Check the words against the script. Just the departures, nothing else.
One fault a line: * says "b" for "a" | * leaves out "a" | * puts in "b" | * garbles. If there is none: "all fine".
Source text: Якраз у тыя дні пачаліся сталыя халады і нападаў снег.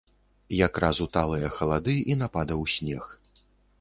* leaves out "тыя дні пачаліся"